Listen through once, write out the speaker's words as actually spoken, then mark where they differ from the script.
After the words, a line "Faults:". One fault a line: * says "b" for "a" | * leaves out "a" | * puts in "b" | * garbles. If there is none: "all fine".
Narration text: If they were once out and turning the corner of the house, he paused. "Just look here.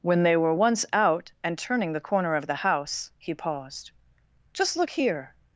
When they were once out and turning the corner of the house, he paused. "Just look here.
Faults:
* says "When" for "If"